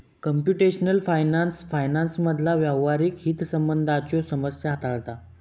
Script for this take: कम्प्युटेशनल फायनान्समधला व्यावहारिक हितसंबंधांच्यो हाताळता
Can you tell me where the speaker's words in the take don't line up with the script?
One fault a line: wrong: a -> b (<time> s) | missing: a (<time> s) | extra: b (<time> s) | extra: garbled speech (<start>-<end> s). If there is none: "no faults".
extra: फायनान्स (1.1 s)
extra: समस्या (4.3 s)